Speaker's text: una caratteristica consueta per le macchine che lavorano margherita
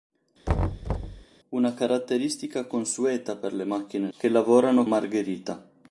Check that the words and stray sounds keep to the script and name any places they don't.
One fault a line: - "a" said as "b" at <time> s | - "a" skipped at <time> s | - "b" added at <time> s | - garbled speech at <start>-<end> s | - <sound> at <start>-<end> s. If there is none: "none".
- thud at 0.5-1.2 s